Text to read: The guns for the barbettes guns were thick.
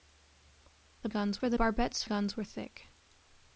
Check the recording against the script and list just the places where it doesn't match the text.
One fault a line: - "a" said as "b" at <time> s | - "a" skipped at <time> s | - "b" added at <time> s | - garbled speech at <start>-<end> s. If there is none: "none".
none